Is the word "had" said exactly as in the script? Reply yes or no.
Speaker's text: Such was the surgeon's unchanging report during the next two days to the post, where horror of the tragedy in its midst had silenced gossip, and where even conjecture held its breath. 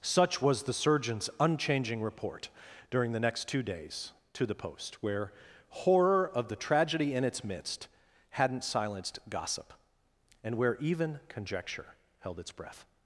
no